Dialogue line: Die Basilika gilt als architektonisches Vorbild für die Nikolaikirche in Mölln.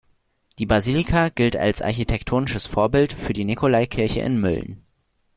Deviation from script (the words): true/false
false